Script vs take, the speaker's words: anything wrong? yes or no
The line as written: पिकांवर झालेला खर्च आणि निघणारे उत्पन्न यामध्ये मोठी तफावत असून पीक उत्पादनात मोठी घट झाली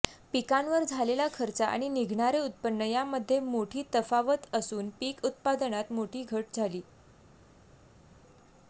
no